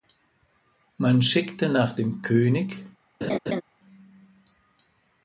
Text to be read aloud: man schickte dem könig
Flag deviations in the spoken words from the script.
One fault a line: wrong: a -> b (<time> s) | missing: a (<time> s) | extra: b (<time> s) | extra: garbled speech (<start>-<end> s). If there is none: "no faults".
extra: nach (1.7 s)